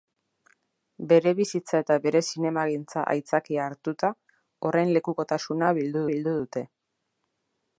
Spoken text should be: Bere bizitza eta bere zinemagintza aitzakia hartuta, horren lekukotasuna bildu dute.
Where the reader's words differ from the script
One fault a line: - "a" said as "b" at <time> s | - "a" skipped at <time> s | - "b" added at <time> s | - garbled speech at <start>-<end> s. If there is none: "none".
- "bildu" added at 6.1 s